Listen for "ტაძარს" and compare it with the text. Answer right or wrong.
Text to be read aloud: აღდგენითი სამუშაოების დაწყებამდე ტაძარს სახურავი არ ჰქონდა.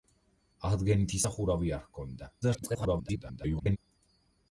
wrong